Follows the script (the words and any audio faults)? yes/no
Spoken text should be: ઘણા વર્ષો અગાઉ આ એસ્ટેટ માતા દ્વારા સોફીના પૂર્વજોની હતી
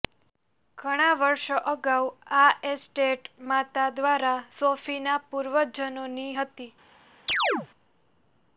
no